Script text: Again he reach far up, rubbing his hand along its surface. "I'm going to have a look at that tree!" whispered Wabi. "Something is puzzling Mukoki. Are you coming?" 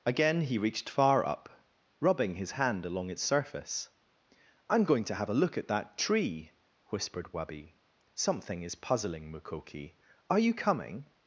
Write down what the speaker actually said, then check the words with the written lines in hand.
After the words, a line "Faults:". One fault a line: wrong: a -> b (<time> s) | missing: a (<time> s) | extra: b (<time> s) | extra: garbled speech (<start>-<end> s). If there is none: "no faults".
Again he reached far up, rubbing his hand along its surface. "I'm going to have a look at that tree!" whispered Wabi. "Something is puzzling Mukoki. Are you coming?"
Faults:
wrong: reach -> reached (0.6 s)